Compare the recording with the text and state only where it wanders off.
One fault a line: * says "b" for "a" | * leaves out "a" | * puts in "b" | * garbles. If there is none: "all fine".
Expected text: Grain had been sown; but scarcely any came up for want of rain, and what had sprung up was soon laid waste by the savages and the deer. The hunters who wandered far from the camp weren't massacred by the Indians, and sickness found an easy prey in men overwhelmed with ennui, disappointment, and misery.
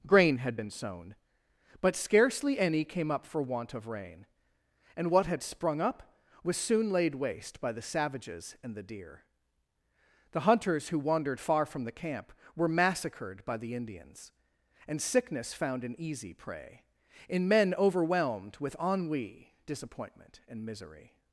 * says "were" for "weren't"